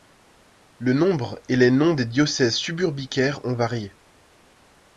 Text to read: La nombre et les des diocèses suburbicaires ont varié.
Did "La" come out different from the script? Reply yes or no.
yes